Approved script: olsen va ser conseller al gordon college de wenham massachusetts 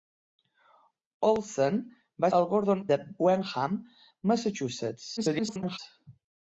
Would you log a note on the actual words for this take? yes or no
yes